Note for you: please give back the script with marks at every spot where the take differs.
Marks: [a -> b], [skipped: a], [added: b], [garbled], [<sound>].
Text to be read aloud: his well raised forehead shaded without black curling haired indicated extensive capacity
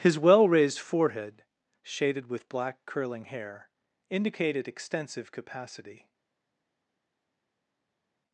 his well raised forehead shaded [without -> with] black curling [haired -> hair] indicated extensive capacity